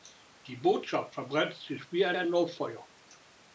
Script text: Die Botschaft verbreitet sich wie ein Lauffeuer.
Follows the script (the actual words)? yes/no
no